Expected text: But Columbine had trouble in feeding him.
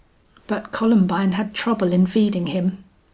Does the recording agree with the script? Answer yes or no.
yes